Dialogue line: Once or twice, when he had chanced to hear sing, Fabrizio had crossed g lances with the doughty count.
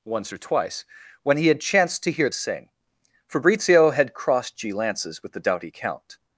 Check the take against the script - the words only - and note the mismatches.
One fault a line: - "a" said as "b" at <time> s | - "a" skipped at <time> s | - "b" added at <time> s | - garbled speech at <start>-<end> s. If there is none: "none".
none